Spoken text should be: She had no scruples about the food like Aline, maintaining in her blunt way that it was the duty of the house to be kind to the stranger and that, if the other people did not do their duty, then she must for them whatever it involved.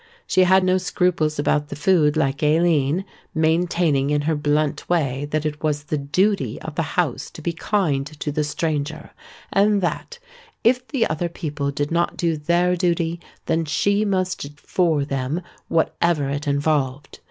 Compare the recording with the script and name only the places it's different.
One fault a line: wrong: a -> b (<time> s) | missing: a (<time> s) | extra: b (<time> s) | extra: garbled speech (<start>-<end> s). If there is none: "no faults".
no faults